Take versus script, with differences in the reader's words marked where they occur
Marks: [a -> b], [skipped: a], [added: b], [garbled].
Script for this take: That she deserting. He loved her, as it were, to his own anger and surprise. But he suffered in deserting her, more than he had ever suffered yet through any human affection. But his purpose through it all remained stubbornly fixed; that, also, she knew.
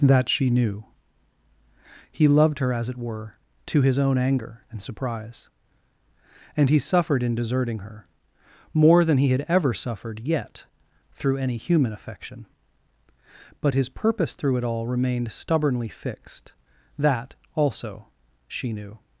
That she [deserting. -> knew] He loved her, as it were, to his own anger and surprise. [But -> And] he suffered in deserting her, more than he had ever suffered yet through any human affection. But his purpose through it all remained stubbornly fixed; that, also, she knew.